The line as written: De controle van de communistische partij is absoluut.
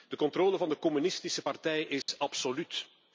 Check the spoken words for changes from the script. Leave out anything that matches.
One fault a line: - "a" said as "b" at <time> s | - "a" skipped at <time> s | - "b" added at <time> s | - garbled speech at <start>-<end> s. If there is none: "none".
none